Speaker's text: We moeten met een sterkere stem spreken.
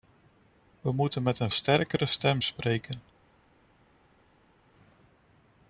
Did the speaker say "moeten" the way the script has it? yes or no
yes